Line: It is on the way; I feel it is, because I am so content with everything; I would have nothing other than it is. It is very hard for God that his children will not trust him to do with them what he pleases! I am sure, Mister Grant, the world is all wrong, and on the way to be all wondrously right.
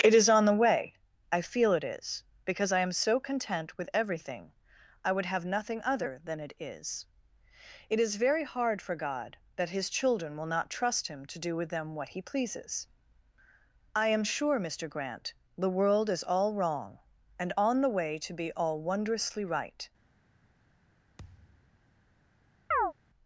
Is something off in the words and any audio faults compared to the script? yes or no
yes